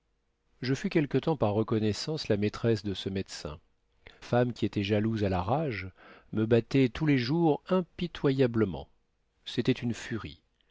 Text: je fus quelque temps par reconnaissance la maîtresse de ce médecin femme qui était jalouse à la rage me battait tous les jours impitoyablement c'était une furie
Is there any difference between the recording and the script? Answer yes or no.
no